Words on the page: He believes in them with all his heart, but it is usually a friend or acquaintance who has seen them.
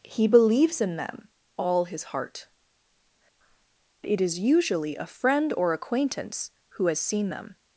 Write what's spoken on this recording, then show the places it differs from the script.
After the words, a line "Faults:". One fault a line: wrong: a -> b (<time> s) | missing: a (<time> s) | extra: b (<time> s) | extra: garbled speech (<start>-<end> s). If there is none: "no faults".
He believes in them all his heart, it is usually a friend or acquaintance who has seen them.
Faults:
missing: with (1.3 s)
missing: but (2.5 s)